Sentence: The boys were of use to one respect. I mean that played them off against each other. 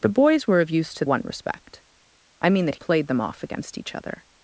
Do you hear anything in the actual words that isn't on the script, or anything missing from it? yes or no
no